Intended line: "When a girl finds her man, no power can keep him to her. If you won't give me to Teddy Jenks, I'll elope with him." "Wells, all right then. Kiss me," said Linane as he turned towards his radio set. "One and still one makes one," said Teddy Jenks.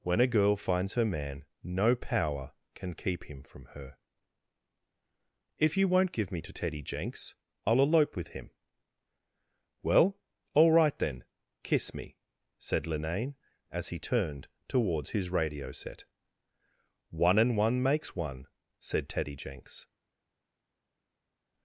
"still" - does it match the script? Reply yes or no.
no